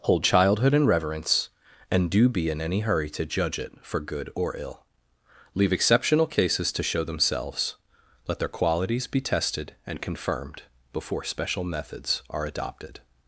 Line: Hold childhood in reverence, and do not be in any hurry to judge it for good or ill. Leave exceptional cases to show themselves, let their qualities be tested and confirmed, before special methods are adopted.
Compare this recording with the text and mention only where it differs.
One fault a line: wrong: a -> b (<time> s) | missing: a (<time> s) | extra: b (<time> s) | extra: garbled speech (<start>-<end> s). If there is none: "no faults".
missing: not (2.3 s)